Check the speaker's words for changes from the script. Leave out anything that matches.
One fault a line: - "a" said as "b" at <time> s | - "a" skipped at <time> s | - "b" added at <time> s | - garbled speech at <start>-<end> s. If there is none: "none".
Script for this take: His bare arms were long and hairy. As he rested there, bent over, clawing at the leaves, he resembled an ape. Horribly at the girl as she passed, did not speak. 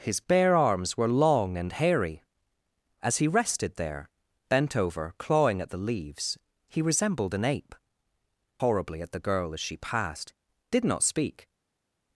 none